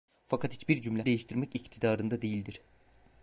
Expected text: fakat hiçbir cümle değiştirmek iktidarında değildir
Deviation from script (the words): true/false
false